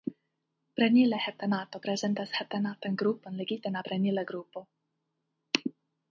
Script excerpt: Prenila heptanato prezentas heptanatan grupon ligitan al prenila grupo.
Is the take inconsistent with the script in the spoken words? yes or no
no